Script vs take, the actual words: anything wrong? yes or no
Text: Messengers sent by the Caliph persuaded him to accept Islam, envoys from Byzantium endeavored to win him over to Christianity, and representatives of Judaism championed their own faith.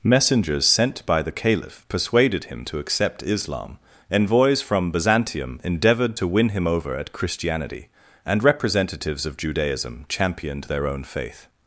yes